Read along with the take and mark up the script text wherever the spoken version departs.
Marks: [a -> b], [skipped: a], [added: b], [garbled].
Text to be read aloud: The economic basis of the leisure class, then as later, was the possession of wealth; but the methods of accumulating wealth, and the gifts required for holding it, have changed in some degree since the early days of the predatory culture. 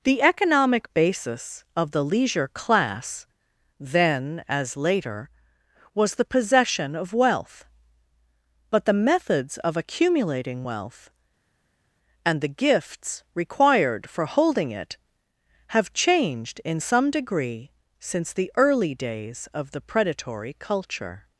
The economic basis of the leisure class, then as later, was the possession of wealth; but the methods of accumulating wealth, and the gifts required for holding it, have changed in some degree since the early days of the predatory culture.